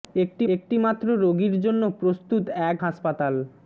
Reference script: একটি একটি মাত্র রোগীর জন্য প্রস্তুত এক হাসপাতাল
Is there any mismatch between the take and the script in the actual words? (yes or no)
no